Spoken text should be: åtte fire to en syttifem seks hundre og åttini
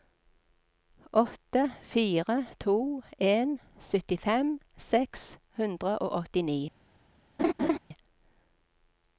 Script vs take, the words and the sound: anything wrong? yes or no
yes